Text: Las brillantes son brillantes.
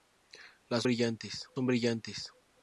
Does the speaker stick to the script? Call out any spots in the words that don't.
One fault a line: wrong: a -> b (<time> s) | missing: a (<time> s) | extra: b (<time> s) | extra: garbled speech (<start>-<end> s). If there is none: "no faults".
no faults